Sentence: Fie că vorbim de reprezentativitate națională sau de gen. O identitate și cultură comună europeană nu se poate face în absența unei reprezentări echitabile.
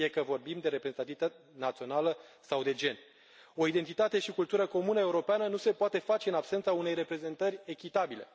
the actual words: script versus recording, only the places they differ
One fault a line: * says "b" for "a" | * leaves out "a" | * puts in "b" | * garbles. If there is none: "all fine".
all fine